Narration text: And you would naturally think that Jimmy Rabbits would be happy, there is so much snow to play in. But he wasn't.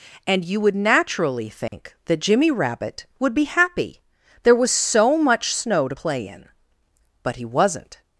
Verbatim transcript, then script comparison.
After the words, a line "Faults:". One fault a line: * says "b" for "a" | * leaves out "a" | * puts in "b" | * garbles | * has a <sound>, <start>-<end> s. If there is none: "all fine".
And you would naturally think that Jimmy Rabbit would be happy, there was so much snow to play in. But he wasn't.
Faults:
* has a dropout, 1.7-1.7 s
* says "Rabbit" for "Rabbits"
* says "was" for "is"